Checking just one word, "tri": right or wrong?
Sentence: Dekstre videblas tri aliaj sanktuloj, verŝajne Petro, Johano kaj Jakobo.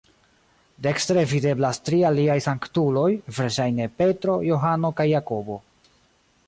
right